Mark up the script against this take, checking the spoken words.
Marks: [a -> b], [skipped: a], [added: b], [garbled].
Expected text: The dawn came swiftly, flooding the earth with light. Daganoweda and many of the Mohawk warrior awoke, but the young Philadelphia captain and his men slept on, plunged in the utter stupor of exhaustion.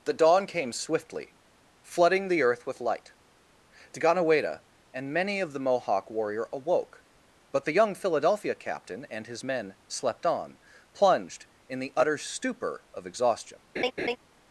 The dawn came swiftly, flooding the earth with light. Daganoweda and many of the Mohawk warrior awoke, but the young Philadelphia captain and his men slept on, plunged in the utter stupor of exhaustion.